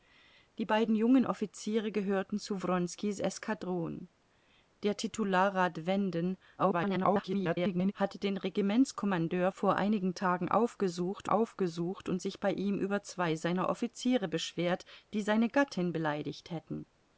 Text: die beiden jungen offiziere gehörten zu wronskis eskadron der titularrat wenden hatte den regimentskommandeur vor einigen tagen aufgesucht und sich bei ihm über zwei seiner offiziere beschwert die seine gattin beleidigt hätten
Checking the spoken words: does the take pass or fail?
fail